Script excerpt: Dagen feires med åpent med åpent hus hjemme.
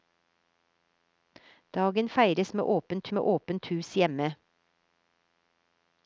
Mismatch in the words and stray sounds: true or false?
false